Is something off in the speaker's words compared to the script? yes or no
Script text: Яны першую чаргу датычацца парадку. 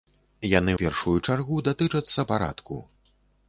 no